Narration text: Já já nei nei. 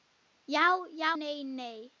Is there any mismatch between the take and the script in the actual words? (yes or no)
no